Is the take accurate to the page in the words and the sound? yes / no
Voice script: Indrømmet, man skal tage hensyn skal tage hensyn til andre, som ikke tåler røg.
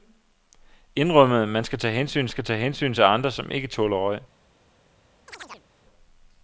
no